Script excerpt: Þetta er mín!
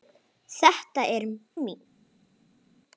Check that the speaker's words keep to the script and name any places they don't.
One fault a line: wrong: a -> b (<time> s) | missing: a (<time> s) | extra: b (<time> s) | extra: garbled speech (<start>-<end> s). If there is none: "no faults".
no faults